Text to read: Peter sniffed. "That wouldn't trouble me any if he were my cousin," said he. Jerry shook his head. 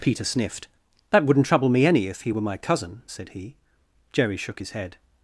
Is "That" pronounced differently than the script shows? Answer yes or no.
no